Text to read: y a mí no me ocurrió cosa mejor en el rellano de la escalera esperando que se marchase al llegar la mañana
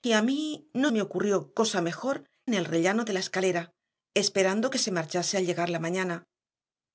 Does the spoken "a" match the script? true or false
true